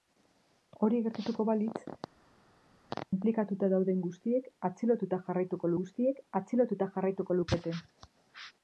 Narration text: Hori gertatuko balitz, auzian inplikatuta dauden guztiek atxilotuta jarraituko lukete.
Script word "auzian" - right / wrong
wrong